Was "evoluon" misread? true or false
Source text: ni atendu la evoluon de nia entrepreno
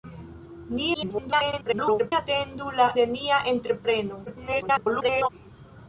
true